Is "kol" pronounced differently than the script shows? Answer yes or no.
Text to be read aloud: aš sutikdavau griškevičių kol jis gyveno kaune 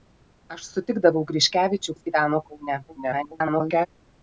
yes